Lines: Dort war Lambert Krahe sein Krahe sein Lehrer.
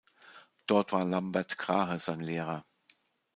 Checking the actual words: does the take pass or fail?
fail